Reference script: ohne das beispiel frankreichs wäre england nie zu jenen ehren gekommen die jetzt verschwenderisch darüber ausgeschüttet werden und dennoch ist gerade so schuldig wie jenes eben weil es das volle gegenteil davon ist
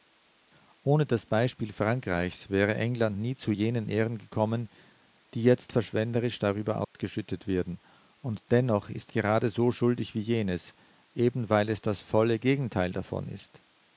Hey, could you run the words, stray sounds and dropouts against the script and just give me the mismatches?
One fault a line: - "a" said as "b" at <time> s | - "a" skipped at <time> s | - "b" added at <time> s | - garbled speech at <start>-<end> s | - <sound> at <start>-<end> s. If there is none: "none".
- dropout at 6.8-7.0 s